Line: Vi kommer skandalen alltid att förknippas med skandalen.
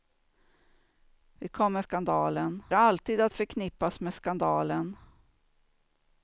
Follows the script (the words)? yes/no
yes